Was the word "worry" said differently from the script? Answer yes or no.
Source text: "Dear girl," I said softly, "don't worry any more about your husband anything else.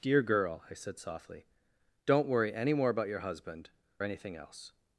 no